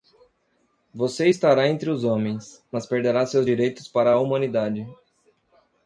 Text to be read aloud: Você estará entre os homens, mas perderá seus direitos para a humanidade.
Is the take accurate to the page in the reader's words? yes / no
yes